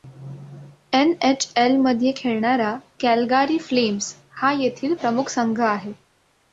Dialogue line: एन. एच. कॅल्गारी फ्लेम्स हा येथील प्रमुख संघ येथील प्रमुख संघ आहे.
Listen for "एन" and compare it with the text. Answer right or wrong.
right